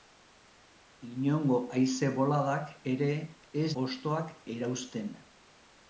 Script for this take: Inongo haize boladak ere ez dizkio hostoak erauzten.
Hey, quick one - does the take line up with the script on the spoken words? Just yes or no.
no